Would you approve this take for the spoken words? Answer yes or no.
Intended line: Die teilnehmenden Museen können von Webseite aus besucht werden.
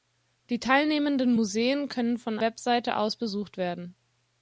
yes